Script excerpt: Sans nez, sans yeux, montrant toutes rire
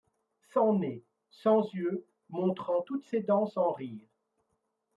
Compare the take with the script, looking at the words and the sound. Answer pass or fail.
fail